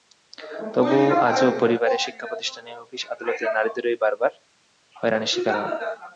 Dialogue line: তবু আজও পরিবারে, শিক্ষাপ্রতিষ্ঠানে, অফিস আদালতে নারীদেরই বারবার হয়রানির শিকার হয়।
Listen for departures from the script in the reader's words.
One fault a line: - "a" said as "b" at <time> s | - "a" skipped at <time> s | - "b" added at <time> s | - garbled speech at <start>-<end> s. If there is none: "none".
none